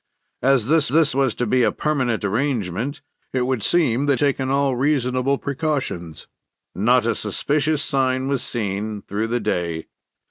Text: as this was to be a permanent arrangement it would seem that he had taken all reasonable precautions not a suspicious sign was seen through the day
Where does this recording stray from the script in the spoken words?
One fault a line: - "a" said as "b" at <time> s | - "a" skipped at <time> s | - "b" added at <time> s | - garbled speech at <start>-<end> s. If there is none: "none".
- "this" added at 0.9 s
- "he had" skipped at 4.2 s